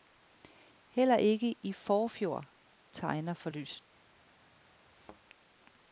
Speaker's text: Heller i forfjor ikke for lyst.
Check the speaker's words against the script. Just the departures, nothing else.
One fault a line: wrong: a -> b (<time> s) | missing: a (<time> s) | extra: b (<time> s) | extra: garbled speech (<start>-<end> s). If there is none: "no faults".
extra: ikke (1.2 s)
wrong: ikke -> tegner (2.9 s)